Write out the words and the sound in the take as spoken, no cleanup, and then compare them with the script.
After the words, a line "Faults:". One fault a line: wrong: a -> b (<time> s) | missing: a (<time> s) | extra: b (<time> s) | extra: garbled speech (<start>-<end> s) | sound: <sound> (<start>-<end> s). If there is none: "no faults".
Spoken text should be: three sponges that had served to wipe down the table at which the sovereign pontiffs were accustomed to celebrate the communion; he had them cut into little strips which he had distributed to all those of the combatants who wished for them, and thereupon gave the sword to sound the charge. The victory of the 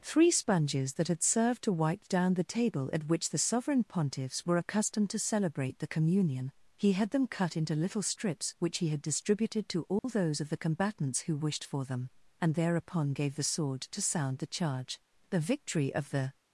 three sponges that had served to wipe down the table at which the sovereign pontiffs were accustomed to celebrate the communion; he had them cut into little strips which he had distributed to all those of the combatants who wished for them, and thereupon gave the sword to sound the charge. The victory of the
Faults:
sound: dropout (10.0-10.0 s)